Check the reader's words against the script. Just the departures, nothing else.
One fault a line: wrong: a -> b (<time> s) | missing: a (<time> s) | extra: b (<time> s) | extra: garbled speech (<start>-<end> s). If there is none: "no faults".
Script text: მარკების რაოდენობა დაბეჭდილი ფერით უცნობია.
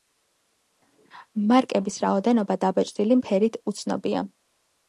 no faults